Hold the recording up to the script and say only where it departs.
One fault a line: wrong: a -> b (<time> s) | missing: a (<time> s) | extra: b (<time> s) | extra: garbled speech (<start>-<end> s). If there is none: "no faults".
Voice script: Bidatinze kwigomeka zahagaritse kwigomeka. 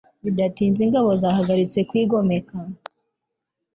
wrong: kwigomeka -> ingabo (0.8 s)